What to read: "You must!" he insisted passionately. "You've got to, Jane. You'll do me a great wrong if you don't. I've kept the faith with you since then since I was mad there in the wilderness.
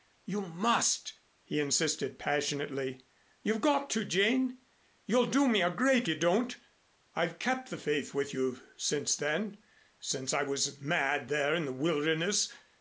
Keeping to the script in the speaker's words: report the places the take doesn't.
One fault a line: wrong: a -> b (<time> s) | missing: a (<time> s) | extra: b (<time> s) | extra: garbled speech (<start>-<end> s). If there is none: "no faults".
missing: wrong if (6.1 s)